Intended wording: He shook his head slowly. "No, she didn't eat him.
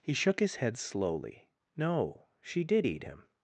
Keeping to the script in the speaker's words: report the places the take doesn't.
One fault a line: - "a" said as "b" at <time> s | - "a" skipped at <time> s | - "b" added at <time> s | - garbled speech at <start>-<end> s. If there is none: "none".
- "didn't" said as "did" at 2.6 s